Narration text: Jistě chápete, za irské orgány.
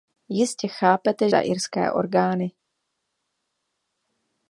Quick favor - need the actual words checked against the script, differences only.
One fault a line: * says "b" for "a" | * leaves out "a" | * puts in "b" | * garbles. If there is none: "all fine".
all fine